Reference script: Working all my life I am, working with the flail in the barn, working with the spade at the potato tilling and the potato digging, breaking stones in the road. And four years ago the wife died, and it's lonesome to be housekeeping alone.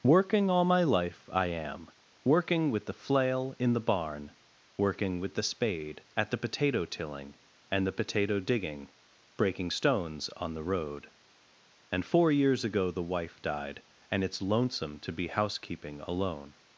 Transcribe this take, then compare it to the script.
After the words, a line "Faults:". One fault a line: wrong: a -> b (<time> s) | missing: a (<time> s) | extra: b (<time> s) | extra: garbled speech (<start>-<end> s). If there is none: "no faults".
Working all my life I am, working with the flail in the barn, working with the spade at the potato tilling and the potato digging, breaking stones on the road. And four years ago the wife died, and it's lonesome to be housekeeping alone.
Faults:
wrong: in -> on (10.4 s)